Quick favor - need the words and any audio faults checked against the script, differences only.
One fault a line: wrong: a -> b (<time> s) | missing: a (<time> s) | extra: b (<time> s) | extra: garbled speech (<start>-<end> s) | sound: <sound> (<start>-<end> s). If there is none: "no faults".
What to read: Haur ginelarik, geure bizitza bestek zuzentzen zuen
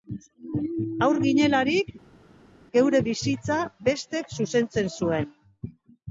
no faults